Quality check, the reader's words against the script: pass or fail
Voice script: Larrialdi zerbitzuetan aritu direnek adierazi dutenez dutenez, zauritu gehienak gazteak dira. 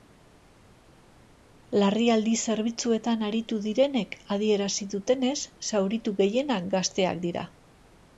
fail